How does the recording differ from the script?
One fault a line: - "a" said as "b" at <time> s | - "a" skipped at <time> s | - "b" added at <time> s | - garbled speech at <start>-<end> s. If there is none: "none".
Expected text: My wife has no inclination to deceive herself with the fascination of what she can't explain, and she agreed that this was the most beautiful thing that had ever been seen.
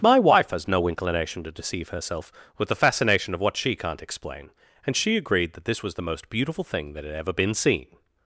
none